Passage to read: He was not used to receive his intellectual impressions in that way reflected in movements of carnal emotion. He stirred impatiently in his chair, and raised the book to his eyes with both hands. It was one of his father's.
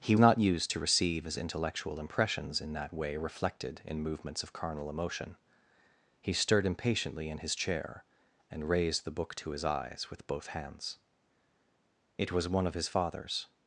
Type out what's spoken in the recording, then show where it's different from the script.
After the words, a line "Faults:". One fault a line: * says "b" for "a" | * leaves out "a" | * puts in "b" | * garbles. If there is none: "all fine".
He not used to receive his intellectual impressions in that way reflected in movements of carnal emotion. He stirred impatiently in his chair, and raised the book to his eyes with both hands. It was one of his father's.
Faults:
* leaves out "was"